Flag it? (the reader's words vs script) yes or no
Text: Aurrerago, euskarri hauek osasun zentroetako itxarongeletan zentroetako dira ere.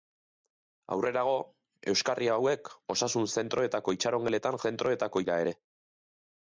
no